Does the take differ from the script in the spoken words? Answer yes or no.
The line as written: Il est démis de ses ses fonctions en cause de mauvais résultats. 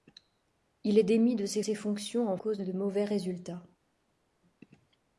no